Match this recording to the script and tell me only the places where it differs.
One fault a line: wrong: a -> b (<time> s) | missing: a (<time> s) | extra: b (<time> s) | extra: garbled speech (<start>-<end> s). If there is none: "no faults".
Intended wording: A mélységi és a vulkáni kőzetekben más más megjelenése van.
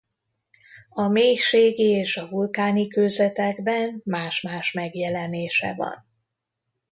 no faults